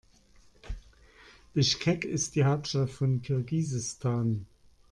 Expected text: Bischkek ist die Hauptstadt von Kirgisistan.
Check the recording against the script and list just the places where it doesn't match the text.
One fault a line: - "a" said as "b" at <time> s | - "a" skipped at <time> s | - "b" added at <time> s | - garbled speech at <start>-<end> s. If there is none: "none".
none